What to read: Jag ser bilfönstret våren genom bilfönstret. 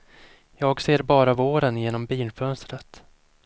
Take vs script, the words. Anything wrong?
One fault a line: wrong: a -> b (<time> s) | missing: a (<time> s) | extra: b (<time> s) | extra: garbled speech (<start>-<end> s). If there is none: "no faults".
wrong: bilfönstret -> bara (1.0 s)